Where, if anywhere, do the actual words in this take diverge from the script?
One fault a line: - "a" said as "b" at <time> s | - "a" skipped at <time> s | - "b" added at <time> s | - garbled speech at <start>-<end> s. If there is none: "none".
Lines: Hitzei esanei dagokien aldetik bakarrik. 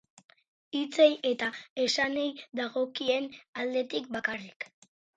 - "eta" added at 1.3 s